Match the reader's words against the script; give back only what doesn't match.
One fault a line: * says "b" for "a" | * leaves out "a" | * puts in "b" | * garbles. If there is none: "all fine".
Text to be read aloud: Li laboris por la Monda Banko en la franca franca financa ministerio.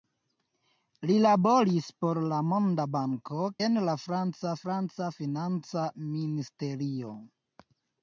all fine